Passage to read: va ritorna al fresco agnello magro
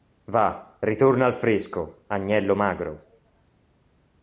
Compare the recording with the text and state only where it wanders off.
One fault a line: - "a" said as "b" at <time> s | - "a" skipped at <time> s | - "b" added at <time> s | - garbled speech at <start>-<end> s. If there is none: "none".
none